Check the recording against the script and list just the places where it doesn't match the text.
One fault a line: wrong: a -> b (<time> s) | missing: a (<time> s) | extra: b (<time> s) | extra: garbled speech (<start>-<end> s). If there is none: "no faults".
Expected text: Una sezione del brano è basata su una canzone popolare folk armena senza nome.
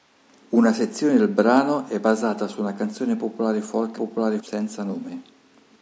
wrong: armena -> popolare (4.0 s)